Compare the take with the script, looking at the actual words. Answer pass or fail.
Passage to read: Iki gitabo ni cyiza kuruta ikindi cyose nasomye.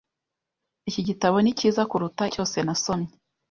fail